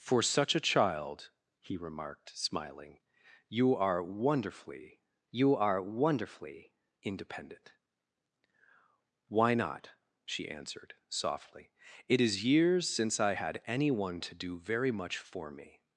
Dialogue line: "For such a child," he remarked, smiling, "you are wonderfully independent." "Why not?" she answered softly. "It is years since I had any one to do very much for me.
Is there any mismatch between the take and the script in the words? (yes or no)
yes